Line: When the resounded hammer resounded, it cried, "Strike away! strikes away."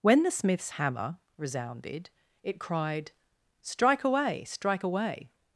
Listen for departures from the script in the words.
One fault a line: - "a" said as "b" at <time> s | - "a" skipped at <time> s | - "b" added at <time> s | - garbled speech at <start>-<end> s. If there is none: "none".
- "resounded" said as "smith's" at 0.3 s
- "strikes" said as "strike" at 4.4 s